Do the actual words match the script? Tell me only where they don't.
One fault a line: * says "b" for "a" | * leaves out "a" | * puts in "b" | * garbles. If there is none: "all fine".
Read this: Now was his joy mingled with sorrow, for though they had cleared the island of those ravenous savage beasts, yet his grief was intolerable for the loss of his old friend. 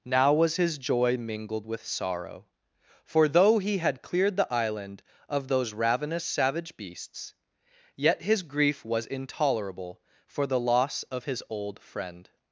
* says "he" for "they"